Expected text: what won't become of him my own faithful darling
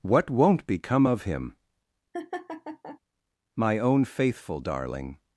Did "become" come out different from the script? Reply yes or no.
no